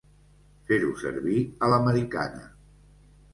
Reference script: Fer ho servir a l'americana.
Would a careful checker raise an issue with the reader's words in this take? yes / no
no